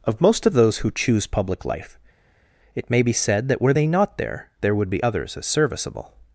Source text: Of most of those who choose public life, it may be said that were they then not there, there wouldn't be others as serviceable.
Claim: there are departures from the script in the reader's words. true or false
true